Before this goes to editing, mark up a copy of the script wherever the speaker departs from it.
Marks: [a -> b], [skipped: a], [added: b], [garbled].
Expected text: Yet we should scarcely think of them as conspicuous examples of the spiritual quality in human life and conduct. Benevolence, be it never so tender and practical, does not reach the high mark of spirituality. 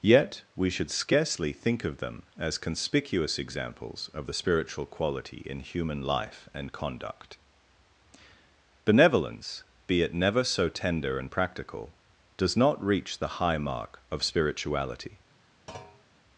Yet we should scarcely think of them as conspicuous examples of the spiritual quality in human life and conduct. Benevolence, be it never so tender and practical, does not reach the high mark of spirituality.